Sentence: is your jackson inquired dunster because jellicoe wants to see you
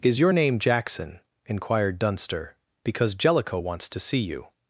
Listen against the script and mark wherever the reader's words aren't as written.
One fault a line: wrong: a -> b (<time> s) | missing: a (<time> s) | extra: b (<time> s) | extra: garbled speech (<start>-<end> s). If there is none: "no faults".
extra: name (0.3 s)